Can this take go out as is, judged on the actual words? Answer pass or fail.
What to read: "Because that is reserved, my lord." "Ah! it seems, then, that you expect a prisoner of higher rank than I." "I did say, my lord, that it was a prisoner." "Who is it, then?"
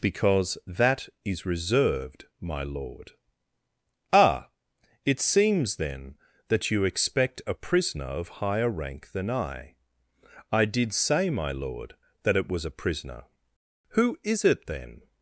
pass